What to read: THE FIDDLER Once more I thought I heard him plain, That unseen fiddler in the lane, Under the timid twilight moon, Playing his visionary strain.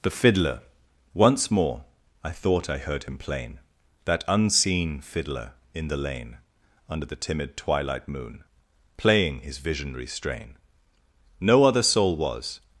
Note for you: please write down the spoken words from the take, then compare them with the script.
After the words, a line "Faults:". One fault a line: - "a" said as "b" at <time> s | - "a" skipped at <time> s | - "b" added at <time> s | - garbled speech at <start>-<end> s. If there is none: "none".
THE FIDDLER Once more I thought I heard him plain, That unseen fiddler in the lane, Under the timid twilight moon, Playing his visionary strain. No other soul was
Faults:
- "No other soul was" added at 11.4 s